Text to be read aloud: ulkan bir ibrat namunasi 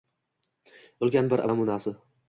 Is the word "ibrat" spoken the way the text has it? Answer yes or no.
no